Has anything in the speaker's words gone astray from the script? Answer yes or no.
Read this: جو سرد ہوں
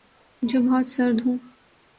yes